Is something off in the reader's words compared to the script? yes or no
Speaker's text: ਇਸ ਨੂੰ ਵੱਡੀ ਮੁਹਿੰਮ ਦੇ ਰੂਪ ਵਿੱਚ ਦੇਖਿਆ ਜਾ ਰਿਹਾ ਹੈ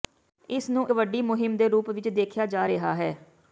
no